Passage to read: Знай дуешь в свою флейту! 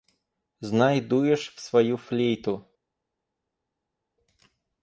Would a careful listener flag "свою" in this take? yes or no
no